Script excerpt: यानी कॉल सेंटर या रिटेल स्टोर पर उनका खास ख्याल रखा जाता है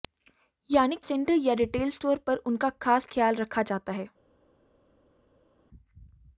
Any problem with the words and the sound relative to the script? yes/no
yes